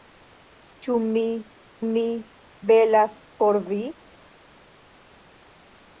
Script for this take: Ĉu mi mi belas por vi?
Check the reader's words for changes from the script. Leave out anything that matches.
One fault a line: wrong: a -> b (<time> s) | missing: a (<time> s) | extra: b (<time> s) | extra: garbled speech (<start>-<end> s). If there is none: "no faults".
no faults